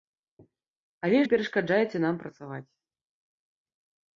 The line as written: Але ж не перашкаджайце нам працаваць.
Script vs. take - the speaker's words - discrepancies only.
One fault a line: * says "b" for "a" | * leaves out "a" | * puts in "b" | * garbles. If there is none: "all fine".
* leaves out "ж"